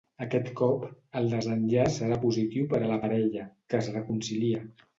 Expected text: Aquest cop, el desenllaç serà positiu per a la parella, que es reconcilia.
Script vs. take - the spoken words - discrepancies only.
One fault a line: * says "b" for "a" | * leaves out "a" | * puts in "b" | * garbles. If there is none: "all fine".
all fine